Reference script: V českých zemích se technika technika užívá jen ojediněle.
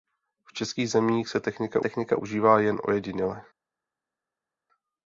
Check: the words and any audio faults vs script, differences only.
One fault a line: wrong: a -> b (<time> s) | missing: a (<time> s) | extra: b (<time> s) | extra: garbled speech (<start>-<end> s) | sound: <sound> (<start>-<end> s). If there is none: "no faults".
no faults